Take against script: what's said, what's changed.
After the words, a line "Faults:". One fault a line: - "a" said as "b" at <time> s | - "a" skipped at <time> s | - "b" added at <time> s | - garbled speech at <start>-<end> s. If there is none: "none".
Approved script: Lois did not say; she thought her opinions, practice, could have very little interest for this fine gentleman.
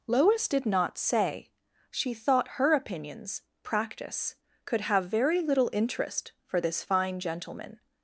Lois did not say; she thought her opinions, practice, could have very little interest for this fine gentleman.
Faults:
none